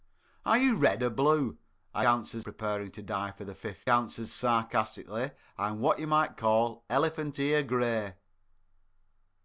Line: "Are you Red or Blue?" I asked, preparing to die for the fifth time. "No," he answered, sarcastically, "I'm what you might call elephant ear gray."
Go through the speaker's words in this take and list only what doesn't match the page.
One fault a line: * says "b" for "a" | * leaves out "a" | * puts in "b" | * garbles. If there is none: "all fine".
* says "answered" for "asked"
* leaves out "time No he"